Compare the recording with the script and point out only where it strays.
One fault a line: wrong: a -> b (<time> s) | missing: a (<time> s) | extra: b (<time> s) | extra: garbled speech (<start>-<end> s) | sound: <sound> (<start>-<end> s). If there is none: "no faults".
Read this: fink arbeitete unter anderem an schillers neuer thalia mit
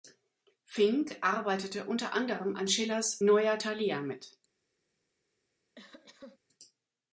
sound: cough (5.7-6.4 s)